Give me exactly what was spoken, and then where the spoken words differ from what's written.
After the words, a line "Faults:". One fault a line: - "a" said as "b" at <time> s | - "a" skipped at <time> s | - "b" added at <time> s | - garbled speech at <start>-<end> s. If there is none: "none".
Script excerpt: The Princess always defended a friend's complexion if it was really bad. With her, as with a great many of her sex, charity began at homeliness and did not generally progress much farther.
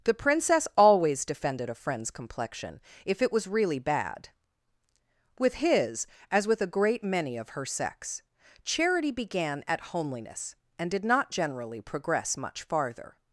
The Princess always defended a friend's complexion if it was really bad. With his, as with a great many of her sex, charity began at homeliness and did not generally progress much farther.
Faults:
- "her" said as "his" at 5.5 s